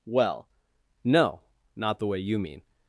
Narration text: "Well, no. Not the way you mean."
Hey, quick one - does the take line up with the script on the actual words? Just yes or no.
yes